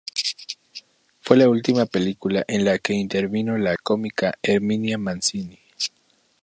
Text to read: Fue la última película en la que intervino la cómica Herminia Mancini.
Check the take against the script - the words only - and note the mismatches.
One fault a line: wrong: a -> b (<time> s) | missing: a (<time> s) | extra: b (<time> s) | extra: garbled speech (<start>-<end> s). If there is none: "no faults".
no faults